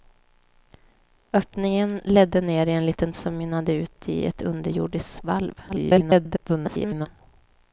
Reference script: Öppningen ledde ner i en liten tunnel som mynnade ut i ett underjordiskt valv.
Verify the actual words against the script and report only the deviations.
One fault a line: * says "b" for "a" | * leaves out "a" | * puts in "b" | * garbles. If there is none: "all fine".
* leaves out "tunnel"
* garbles